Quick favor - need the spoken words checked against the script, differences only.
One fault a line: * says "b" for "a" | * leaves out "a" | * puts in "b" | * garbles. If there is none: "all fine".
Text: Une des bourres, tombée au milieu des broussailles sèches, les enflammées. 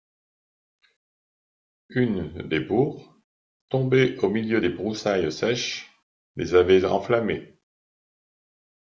* puts in "avait"